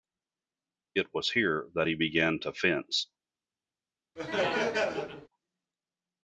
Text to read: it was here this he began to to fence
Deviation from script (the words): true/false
true